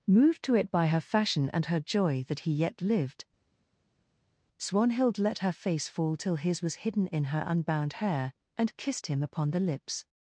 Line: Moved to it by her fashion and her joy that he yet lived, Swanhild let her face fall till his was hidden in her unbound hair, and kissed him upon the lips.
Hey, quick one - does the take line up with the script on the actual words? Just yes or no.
yes